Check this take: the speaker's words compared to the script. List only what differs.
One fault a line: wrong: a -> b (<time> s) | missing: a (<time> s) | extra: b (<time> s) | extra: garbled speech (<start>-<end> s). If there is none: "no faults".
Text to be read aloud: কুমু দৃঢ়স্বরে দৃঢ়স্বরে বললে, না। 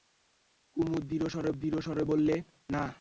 no faults